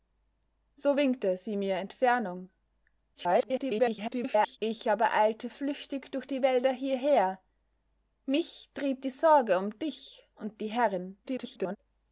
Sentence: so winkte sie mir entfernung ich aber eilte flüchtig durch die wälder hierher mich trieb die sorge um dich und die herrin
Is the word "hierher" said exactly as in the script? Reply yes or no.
yes